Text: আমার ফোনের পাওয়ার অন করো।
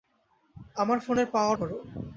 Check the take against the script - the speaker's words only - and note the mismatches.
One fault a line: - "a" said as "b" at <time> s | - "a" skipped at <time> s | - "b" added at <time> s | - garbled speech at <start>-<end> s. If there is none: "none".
- "অন" skipped at 1.6 s